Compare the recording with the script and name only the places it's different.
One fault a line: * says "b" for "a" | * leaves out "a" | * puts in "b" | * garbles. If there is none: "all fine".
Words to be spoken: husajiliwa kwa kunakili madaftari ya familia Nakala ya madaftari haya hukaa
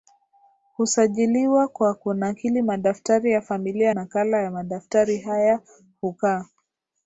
all fine